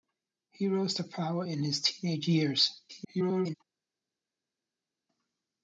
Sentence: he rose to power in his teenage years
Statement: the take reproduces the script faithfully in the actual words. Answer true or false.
false